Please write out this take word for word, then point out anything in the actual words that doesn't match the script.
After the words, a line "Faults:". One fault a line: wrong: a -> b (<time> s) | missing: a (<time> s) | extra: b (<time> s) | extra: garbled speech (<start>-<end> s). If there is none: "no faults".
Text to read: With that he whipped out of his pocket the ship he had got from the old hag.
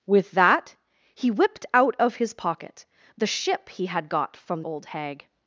With that he whipped out of his pocket the ship he had got from old hag.
Faults:
missing: the (4.6 s)